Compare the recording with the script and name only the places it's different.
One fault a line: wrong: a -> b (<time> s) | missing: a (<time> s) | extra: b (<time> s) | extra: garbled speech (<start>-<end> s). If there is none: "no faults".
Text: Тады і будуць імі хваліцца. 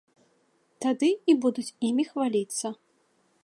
no faults